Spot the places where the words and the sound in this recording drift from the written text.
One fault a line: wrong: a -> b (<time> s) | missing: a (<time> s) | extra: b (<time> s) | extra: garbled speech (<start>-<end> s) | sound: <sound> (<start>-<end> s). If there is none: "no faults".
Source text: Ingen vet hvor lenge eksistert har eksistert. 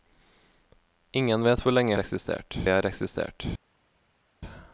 no faults